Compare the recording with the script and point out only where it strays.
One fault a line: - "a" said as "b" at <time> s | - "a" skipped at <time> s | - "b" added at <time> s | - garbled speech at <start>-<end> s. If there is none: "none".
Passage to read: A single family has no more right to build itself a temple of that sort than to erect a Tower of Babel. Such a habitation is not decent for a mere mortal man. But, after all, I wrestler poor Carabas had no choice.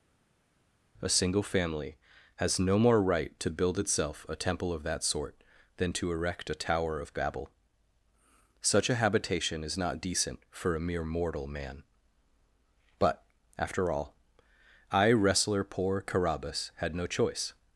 none